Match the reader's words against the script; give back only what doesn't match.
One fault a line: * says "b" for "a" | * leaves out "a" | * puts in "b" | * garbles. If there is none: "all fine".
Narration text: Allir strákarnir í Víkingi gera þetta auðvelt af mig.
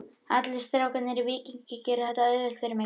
* says "fyrir" for "af"